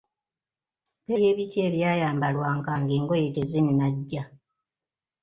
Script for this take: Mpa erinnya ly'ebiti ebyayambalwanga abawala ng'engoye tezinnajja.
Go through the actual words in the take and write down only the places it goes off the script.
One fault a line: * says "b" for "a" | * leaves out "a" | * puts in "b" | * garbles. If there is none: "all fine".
* leaves out "erinnya"
* leaves out "abawala"